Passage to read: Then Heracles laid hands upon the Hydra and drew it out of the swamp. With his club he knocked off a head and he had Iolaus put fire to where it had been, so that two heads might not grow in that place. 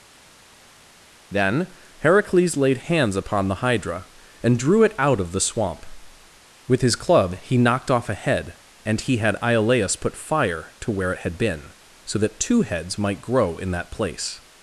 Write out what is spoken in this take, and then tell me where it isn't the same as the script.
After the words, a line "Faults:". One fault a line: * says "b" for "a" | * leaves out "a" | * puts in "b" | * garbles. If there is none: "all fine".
Then Heracles laid hands upon the Hydra and drew it out of the swamp. With his club he knocked off a head and he had Iolaus put fire to where it had been, so that two heads might grow in that place.
Faults:
* leaves out "not"